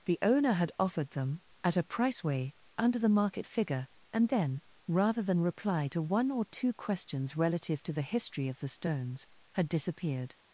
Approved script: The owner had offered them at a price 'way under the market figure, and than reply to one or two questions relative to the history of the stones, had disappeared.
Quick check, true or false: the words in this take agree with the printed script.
false